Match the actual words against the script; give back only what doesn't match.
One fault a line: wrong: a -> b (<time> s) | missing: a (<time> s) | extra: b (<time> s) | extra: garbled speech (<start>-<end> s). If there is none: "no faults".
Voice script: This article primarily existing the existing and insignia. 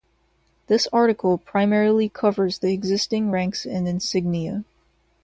wrong: existing -> covers (2.1 s)
extra: ranks (3.3 s)